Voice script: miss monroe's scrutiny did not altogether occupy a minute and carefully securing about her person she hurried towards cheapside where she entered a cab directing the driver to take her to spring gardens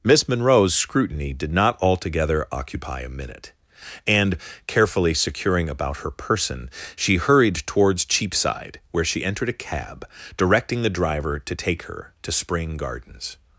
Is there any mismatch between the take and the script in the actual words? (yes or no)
no